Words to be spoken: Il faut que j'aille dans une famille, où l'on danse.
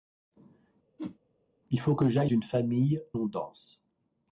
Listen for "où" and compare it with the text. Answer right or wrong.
wrong